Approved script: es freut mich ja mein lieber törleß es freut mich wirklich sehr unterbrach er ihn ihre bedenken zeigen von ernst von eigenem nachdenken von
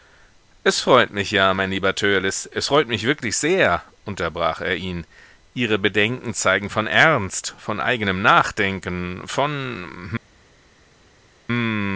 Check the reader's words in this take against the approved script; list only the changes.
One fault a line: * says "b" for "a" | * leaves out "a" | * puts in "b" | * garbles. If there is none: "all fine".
all fine